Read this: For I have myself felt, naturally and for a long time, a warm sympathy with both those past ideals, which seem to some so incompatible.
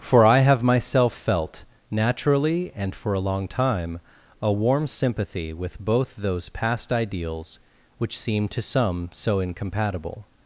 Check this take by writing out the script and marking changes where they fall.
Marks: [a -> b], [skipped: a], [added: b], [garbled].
For I have myself felt, naturally and for a long time, a warm sympathy with both those past ideals, which seem to some so incompatible.